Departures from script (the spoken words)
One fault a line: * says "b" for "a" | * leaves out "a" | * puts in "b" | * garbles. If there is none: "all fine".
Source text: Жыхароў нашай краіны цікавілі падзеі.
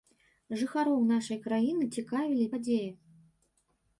all fine